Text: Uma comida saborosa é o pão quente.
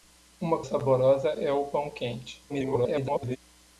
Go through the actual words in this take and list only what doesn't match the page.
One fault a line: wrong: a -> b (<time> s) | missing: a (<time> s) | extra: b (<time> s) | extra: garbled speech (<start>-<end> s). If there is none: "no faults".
missing: comida (0.6 s)
extra: garbled speech (2.5-3.4 s)